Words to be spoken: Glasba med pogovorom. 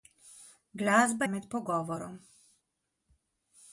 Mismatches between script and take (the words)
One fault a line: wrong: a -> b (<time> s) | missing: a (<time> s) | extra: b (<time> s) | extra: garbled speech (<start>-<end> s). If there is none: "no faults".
no faults